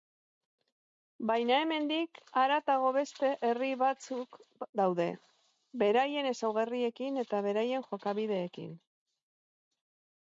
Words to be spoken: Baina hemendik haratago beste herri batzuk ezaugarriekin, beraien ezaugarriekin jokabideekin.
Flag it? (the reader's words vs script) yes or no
yes